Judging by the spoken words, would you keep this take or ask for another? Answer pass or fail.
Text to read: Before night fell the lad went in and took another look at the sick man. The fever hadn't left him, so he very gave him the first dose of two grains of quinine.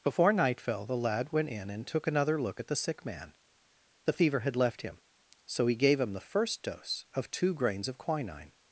fail